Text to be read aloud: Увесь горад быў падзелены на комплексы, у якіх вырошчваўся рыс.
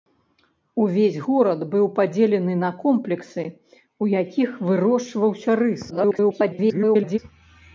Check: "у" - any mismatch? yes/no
no